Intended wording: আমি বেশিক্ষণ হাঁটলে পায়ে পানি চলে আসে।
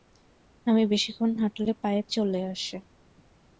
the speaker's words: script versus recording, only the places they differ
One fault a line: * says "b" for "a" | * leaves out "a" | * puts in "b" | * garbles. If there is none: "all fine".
* leaves out "পানি"